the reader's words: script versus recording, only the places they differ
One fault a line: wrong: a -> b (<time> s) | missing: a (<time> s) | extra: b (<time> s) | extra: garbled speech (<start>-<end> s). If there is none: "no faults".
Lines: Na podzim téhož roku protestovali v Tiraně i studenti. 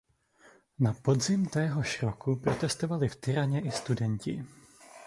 no faults